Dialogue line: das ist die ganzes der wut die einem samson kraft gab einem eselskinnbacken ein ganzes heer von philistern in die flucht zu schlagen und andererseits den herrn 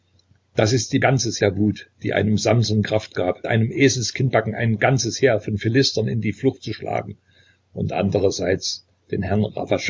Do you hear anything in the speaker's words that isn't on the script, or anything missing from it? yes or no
no